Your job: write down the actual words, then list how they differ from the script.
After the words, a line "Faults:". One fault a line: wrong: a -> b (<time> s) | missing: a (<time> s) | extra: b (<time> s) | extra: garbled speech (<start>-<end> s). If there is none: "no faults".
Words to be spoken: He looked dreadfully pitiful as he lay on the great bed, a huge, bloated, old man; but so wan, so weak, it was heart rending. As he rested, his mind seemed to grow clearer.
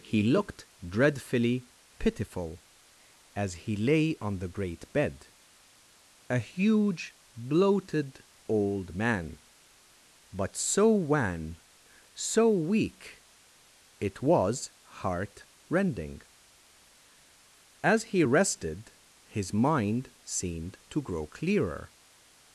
He looked dreadfully pitiful as he lay on the great bed, a huge, bloated, old man; but so wan, so weak, it was heart rending. As he rested, his mind seemed to grow clearer.
Faults:
no faults